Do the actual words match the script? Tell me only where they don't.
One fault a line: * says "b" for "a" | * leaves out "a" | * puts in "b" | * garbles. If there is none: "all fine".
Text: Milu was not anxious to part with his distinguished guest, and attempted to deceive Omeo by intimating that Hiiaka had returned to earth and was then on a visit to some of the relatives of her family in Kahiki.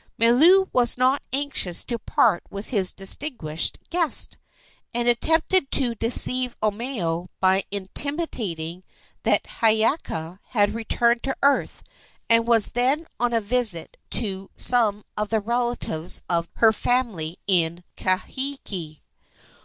all fine